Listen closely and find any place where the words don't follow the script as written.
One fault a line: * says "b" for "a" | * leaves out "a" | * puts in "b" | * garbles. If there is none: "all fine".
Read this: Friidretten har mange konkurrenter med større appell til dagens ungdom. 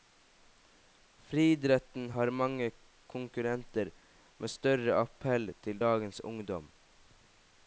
all fine